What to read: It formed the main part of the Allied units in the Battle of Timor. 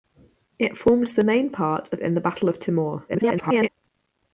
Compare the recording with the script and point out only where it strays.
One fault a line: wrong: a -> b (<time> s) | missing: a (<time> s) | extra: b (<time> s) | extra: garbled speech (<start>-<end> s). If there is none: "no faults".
missing: the Allied units (2.0 s)
extra: garbled speech (3.1-3.7 s)